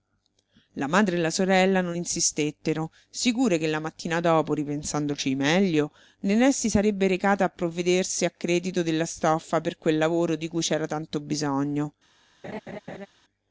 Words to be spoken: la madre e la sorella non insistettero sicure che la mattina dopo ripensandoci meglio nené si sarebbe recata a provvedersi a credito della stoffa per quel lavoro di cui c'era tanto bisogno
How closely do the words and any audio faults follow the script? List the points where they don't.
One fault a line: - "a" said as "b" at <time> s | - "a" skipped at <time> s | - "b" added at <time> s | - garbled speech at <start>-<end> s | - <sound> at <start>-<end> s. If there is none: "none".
- laugh at 12.4-13.1 s